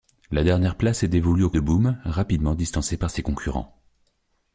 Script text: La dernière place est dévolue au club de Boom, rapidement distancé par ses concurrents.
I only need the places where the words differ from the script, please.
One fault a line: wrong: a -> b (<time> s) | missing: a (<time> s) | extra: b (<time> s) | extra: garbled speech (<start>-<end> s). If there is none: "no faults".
missing: club (1.5 s)